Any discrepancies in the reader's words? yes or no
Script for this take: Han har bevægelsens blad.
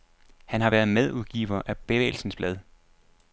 yes